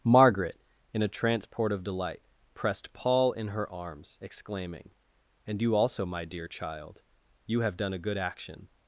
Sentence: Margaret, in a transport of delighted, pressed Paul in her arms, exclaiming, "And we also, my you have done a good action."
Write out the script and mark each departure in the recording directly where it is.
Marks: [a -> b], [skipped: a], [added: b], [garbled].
Margaret, in a transport of [delighted, -> delight] pressed Paul in her arms, exclaiming, "And [we -> you] also, my [added: dear child] you have done a good action."